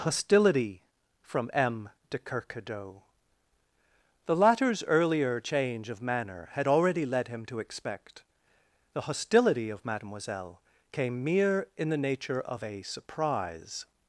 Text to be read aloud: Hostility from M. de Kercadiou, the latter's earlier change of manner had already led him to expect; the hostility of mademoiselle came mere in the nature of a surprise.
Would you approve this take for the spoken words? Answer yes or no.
yes